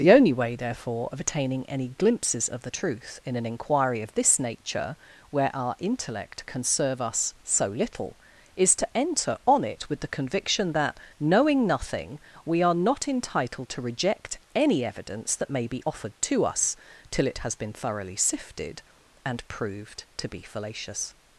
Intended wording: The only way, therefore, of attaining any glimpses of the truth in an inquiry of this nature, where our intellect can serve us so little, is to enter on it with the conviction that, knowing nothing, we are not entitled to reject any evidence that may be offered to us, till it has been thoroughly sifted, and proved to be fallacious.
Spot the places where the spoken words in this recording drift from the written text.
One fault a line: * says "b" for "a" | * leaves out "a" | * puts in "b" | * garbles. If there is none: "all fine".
all fine